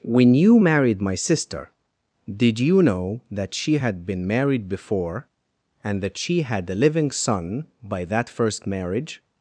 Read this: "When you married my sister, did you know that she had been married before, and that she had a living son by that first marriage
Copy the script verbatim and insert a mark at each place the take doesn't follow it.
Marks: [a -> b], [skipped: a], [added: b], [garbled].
"When you married my sister, did you know that she had been married before, and that she had a living son by that first marriage